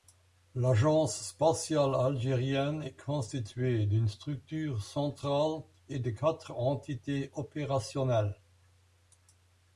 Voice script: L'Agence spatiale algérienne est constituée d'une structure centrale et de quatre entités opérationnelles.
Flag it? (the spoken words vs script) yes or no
no